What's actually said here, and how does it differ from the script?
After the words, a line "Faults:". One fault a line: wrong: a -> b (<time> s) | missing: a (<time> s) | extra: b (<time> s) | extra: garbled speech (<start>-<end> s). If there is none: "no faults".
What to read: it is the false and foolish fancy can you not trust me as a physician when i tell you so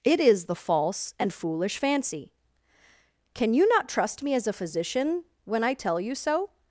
it is the false and foolish fancy can you not trust me as a physician when i tell you so
Faults:
no faults